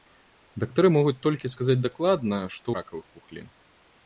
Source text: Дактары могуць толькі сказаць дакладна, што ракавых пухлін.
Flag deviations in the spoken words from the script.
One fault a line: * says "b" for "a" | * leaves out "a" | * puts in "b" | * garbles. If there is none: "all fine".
all fine